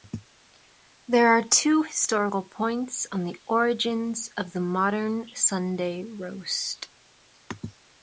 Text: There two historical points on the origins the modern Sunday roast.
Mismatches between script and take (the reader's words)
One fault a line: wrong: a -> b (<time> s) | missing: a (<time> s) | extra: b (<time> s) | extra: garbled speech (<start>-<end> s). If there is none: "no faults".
extra: are (1.3 s)
extra: of (4.3 s)